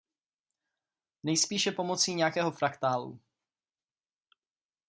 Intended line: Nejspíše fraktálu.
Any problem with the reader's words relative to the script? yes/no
yes